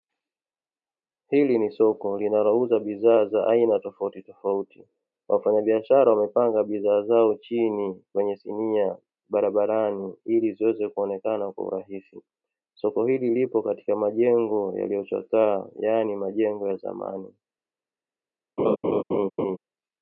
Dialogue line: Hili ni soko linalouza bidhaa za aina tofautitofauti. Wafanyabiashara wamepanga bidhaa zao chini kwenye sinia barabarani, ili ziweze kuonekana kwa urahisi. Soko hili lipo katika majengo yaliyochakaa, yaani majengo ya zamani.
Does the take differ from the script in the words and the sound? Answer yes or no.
yes